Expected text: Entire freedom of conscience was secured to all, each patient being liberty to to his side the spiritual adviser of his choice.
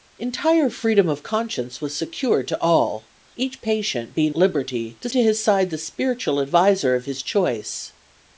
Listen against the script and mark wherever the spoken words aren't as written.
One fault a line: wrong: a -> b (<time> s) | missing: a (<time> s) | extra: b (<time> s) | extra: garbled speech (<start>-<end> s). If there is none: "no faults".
no faults